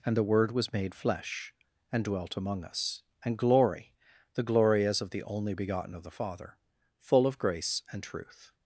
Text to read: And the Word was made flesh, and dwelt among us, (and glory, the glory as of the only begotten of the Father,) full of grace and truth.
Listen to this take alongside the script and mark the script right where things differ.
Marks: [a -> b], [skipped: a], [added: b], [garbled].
And the Word was made flesh, and dwelt among us, (and glory, the glory as of the only begotten of the Father,) full of grace and truth.